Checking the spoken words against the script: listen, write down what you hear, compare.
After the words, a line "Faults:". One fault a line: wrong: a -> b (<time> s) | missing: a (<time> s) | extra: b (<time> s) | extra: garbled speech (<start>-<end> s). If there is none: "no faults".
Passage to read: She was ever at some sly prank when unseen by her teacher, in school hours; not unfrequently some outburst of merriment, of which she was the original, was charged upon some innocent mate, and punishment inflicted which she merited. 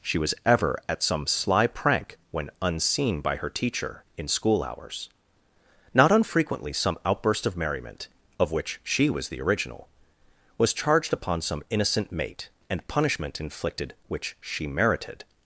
She was ever at some sly prank when unseen by her teacher, in school hours; not unfrequently some outburst of merriment, of which she was the original, was charged upon some innocent mate, and punishment inflicted which she merited.
Faults:
no faults